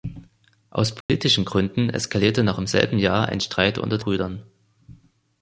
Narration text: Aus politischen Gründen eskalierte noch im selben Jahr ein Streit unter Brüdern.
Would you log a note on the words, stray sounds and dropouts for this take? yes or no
yes